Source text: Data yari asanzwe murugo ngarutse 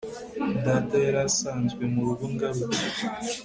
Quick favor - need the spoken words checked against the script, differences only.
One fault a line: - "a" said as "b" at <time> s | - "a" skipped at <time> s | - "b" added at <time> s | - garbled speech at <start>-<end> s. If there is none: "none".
none